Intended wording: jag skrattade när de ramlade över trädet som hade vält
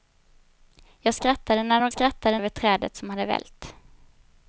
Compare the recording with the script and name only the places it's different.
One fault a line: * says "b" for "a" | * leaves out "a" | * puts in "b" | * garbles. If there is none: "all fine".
* says "skrattade" for "ramlade"